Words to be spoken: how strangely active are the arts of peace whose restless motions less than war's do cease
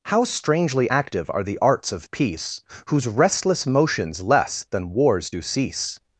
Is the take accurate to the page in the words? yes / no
yes